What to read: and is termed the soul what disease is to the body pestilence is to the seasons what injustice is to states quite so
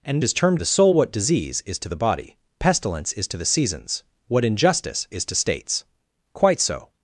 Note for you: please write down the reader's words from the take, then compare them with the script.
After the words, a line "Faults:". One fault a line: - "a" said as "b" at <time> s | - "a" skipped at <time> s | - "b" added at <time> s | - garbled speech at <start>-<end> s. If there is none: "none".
and is termed the soul what disease is to the body pestilence is to the seasons what injustice is to states quite so
Faults:
none